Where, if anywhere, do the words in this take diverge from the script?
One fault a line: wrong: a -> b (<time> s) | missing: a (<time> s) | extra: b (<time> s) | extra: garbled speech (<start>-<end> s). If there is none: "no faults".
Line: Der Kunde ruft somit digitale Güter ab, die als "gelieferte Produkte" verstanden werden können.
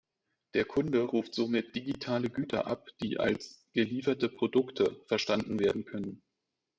no faults